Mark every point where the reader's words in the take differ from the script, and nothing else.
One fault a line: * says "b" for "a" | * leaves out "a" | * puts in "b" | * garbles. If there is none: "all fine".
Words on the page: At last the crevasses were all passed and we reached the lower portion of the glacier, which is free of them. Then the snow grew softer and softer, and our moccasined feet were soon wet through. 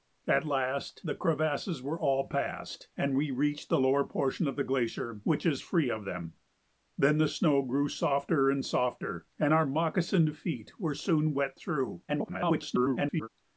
* garbles